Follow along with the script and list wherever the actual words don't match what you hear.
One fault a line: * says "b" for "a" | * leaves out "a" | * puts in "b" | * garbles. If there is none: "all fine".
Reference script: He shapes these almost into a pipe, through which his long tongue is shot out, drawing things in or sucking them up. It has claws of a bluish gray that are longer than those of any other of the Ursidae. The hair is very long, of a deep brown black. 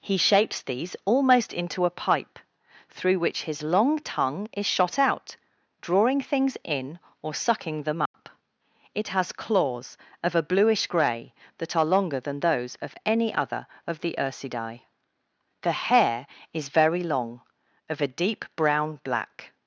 all fine